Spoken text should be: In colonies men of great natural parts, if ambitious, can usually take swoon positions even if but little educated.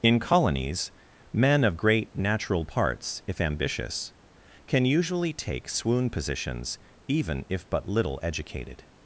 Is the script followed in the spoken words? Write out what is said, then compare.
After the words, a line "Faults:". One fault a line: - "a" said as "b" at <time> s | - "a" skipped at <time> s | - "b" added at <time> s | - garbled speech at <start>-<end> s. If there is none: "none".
In colonies men of great natural parts, if ambitious, can usually take swoon positions even if but little educated.
Faults:
none